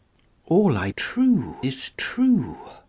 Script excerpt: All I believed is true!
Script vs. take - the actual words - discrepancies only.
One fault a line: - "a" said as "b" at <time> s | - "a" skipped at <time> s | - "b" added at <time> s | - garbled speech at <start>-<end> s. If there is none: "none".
- "believed" said as "true" at 0.9 s